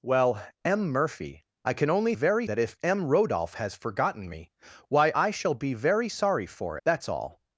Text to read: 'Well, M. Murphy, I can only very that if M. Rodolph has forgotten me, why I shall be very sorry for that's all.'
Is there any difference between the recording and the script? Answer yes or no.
no